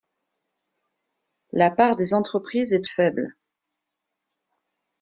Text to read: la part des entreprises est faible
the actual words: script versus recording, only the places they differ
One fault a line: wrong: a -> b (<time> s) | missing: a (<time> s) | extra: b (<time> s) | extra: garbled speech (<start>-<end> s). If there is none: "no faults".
no faults